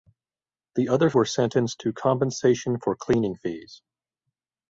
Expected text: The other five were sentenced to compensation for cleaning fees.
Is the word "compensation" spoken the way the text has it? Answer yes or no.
yes